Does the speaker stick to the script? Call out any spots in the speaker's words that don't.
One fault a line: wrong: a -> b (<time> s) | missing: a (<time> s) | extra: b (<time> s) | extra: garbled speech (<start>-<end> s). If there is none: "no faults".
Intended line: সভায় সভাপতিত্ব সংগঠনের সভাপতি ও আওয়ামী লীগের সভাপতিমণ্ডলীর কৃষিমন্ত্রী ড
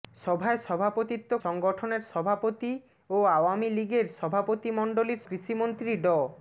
no faults